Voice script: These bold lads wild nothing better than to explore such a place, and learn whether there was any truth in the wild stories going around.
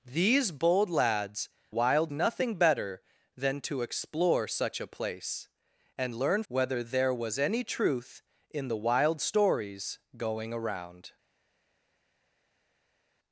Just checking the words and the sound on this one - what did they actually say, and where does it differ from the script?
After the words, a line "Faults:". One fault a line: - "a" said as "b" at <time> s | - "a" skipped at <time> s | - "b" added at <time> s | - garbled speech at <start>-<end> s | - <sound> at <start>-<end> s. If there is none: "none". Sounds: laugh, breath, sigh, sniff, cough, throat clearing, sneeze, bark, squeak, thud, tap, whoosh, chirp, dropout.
These bold lads wild nothing better than to explore such a place, and learn whether there was any truth in the wild stories going around.
Faults:
none